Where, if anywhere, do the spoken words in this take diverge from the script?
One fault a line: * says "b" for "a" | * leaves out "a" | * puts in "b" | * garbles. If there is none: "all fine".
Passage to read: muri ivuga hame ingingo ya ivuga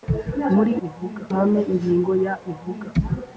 all fine